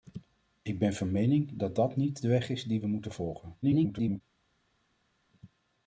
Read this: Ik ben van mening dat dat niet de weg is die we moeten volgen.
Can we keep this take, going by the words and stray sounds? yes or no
no